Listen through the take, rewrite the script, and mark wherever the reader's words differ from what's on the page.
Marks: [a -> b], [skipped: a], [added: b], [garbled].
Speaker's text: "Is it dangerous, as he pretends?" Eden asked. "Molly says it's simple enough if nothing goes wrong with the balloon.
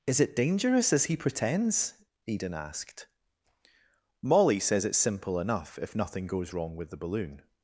"Is it dangerous, as he pretends?" Eden asked. "Molly says it's simple enough if nothing goes wrong with the balloon.